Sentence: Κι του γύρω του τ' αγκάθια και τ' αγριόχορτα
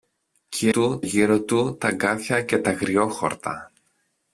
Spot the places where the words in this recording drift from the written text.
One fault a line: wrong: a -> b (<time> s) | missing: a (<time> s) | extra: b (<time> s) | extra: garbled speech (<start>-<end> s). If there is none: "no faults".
no faults